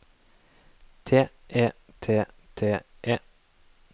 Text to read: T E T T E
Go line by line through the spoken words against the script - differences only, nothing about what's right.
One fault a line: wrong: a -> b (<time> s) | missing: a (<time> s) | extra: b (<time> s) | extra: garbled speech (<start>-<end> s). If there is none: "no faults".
no faults